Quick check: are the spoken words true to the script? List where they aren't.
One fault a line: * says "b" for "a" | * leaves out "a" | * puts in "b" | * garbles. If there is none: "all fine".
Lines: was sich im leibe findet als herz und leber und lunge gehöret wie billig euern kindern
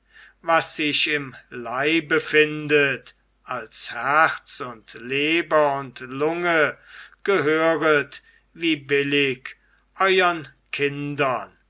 all fine